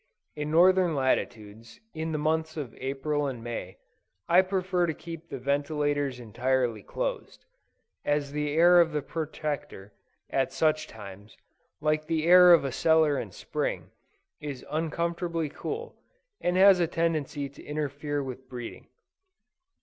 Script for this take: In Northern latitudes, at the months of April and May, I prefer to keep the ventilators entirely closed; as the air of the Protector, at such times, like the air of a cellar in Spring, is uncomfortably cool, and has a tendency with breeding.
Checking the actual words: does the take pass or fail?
fail